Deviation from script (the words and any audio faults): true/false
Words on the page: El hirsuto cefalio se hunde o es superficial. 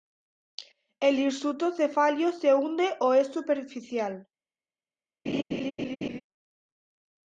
true